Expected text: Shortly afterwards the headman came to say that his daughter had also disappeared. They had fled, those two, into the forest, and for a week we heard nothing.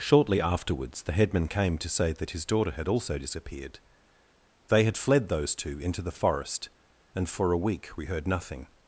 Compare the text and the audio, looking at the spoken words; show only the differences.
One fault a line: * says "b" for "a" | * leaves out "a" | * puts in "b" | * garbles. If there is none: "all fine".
all fine